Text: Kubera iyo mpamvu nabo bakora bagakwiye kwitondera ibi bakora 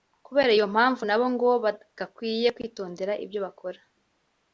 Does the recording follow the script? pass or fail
fail